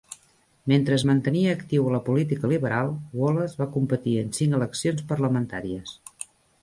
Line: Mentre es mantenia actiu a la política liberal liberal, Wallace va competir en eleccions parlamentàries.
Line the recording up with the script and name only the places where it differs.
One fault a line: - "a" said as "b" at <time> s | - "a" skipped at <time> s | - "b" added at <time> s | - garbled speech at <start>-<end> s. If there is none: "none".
- "liberal" skipped at 2.9 s
- "cinc" added at 4.4 s